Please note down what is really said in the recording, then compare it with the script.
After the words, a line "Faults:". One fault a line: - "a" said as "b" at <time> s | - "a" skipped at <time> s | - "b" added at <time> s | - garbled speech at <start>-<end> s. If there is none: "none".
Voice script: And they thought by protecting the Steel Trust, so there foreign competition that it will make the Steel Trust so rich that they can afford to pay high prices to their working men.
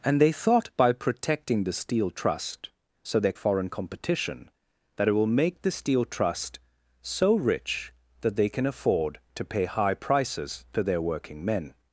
And they thought by protecting the Steel Trust, so there foreign competition that it will make the Steel Trust so rich that they can afford to pay high prices to their working men.
Faults:
none